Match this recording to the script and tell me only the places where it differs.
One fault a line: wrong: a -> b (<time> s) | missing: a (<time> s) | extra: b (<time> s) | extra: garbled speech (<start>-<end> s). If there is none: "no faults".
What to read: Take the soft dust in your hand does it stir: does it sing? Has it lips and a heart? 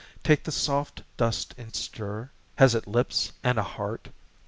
missing: your hand does (1.7 s)
missing: does it sing (2.3 s)